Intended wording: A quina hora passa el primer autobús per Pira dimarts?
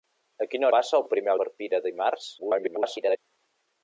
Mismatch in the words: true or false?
true